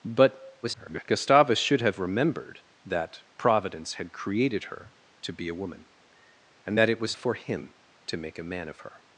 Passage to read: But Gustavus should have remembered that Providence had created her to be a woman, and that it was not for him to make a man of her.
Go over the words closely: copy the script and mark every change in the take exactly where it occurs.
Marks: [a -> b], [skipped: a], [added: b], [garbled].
But [garbled] Gustavus should have remembered that Providence had created her to be a woman, and that it was [skipped: not] for him to make a man of her.